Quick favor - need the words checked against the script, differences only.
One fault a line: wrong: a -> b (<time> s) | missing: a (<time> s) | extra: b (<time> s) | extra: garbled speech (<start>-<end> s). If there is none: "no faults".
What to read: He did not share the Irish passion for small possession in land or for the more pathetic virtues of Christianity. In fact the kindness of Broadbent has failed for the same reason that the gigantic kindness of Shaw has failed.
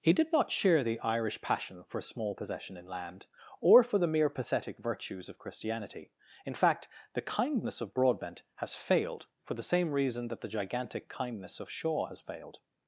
wrong: more -> mere (4.1 s)